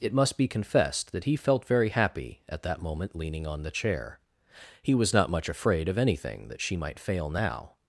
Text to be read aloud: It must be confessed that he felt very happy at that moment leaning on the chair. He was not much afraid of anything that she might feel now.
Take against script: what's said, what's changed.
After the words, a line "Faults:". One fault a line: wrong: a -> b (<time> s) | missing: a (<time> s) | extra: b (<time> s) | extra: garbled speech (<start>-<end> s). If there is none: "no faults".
It must be confessed that he felt very happy at that moment leaning on the chair. He was not much afraid of anything that she might fail now.
Faults:
wrong: feel -> fail (7.0 s)